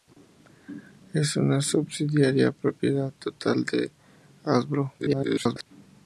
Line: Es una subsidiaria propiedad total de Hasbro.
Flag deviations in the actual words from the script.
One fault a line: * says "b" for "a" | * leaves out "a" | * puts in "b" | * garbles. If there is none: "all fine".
* garbles